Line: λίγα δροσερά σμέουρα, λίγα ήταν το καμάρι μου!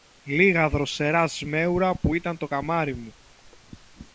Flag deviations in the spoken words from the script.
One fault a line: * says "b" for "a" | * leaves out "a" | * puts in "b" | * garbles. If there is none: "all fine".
* says "που" for "λίγα"